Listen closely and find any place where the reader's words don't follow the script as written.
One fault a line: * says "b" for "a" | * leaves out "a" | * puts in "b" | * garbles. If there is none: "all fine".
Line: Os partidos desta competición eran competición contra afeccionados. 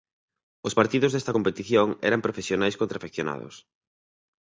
* says "profesionais" for "competición"